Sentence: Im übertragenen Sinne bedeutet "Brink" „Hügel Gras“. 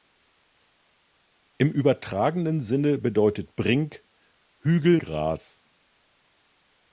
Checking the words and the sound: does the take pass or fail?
pass